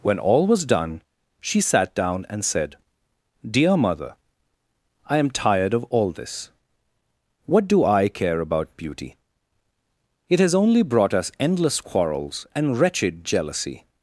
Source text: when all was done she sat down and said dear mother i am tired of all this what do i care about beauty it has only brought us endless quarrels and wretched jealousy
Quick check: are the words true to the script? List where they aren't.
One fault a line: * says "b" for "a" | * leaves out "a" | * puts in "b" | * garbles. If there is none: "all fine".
all fine